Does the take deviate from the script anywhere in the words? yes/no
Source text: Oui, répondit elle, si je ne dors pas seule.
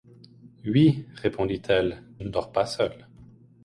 yes